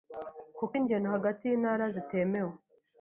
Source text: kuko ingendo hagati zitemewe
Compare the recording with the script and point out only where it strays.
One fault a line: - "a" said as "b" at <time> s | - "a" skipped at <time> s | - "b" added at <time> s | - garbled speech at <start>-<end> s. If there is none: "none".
- "y'intara" added at 1.4 s